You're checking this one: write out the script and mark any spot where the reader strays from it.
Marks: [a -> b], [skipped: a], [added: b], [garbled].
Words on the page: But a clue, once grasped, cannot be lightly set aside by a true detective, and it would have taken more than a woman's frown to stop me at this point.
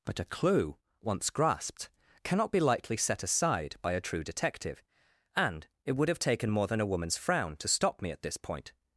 But a clue, once grasped, cannot be lightly set aside by a true detective, and it would have taken more than a woman's frown to stop me at this point.